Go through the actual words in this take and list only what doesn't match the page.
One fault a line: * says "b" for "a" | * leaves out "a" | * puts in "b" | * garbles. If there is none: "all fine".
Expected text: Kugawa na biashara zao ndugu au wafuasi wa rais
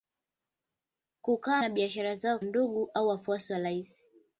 all fine